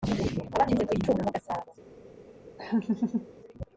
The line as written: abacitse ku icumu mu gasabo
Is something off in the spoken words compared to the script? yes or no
no